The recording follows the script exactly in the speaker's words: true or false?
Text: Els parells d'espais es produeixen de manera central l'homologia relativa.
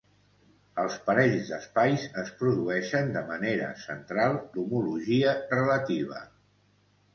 true